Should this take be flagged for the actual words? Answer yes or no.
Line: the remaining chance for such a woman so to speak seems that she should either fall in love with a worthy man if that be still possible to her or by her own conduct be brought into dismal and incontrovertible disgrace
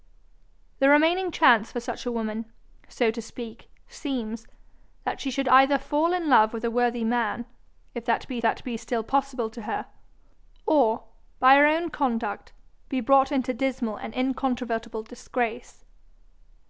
yes